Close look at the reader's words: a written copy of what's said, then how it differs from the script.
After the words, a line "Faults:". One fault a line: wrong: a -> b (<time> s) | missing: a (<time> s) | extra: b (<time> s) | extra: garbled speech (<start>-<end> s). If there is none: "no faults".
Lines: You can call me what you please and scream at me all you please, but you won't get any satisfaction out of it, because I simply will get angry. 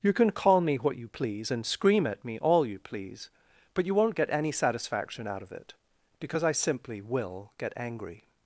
You can call me what you please and scream at me all you please, but you won't get any satisfaction out of it, because I simply will get angry.
Faults:
no faults